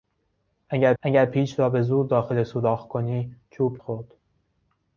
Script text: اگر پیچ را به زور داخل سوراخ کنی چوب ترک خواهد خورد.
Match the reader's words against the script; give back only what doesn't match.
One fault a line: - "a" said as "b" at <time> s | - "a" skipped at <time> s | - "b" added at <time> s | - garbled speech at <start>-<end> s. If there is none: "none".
- "اگر" added at 1.0 s
- "ترک خواهد" skipped at 3.8 s